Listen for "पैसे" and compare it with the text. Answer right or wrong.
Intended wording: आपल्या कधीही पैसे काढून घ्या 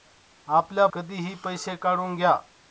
right